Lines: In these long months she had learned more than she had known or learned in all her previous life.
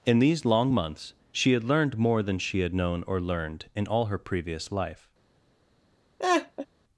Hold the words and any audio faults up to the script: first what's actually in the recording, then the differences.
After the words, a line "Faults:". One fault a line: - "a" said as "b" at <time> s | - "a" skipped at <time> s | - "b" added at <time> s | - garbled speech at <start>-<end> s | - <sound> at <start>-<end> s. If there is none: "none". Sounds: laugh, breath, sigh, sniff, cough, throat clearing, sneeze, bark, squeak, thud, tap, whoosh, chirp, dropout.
In these long months she had learned more than she had known or learned in all her previous life.
Faults:
- laugh at 6.2-6.7 s